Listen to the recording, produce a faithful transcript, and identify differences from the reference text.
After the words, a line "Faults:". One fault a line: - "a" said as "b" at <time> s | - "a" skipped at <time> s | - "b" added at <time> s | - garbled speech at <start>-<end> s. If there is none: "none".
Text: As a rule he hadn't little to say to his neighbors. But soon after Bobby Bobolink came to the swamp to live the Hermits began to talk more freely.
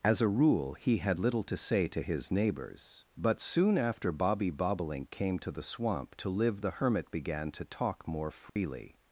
As a rule he had little to say to his neighbors. But soon after Bobby Bobolink came to the swamp to live the Hermit began to talk more freely.
Faults:
- "hadn't" said as "had" at 1.0 s
- "Hermits" said as "Hermit" at 6.7 s